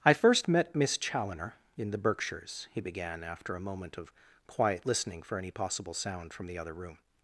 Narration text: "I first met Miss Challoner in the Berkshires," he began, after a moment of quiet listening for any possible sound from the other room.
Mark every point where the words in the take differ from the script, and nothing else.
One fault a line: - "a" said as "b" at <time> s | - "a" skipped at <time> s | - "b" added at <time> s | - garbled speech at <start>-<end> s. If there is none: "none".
none